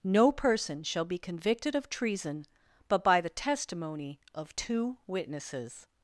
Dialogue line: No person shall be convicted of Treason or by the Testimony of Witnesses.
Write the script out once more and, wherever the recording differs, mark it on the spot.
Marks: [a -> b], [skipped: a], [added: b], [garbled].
No person shall be convicted of Treason [or -> but] by the Testimony of [added: two] Witnesses.